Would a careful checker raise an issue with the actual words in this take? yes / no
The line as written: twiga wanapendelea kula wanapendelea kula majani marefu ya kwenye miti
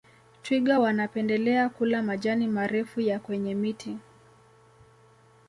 yes